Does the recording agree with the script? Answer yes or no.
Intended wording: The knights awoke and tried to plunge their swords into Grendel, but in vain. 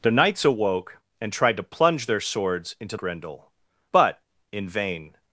yes